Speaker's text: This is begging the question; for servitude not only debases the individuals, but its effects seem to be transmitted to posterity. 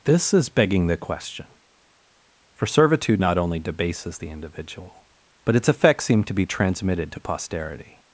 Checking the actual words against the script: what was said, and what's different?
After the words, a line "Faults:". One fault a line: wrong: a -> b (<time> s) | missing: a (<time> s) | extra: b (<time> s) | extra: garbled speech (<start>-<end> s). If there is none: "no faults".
This is begging the question; for servitude not only debases the individual, but its effects seem to be transmitted to posterity.
Faults:
wrong: individuals -> individual (4.3 s)